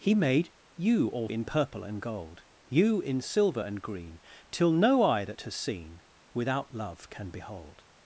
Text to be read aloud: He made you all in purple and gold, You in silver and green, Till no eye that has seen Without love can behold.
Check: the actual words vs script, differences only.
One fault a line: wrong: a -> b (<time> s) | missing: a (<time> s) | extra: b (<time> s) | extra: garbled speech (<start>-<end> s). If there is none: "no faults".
no faults